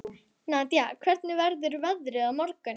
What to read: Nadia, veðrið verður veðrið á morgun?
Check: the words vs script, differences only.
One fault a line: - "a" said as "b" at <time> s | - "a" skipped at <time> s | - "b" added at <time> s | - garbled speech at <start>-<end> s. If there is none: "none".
- "veðrið" said as "hvernig" at 1.1 s